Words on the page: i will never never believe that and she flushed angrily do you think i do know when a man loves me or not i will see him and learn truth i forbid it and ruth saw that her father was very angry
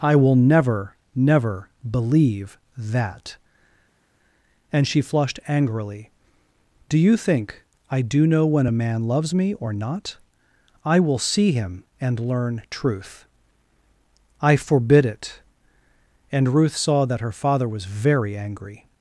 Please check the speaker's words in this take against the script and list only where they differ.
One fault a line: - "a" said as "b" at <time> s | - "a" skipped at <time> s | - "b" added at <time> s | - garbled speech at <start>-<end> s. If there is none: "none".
none